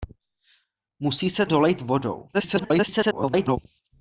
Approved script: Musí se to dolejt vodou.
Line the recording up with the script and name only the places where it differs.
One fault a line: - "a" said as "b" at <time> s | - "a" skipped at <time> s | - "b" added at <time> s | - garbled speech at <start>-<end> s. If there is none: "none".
- "to" skipped at 1.4 s
- garbled speech at 2.3-3.6 s